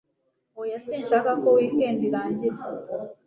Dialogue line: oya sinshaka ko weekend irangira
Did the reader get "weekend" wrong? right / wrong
right